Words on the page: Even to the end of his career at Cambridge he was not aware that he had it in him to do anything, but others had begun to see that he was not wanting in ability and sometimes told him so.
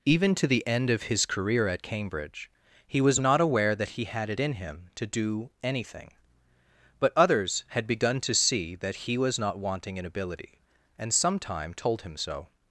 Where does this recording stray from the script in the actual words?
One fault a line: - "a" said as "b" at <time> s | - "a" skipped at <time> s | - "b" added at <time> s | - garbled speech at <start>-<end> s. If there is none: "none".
- "sometimes" said as "sometime" at 11.1 s